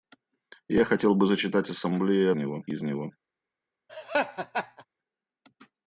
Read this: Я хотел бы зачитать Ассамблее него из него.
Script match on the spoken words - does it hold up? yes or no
yes